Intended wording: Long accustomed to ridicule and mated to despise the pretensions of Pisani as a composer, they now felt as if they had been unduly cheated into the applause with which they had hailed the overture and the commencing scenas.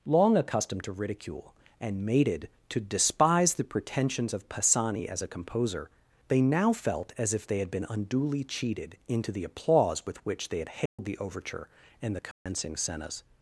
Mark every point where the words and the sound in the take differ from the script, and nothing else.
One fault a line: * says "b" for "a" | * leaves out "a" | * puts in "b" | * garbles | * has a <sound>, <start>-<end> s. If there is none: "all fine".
* has a dropout, 10.9-11.0 s
* has a dropout, 12.3-12.5 s